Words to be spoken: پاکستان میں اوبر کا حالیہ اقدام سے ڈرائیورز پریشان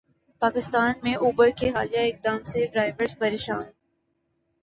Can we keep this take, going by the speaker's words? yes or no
no